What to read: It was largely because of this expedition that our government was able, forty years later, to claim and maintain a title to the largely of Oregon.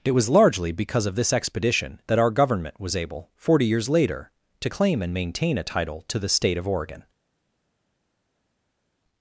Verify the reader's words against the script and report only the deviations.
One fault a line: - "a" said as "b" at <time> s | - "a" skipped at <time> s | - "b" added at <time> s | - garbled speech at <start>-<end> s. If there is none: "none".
- "largely" said as "state" at 6.3 s